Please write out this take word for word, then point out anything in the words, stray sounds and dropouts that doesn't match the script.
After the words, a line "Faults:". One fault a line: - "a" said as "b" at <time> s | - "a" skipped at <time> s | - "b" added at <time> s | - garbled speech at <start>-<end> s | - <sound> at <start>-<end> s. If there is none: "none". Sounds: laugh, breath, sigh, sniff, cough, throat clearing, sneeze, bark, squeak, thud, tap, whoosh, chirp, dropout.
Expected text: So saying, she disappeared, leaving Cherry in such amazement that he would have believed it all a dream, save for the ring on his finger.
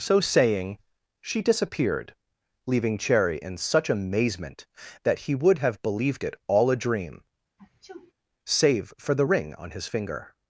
So saying, she disappeared, leaving Cherry in such amazement that he would have believed it all a dream, save for the ring on his finger.
Faults:
- sneeze at 7.6-8.1 s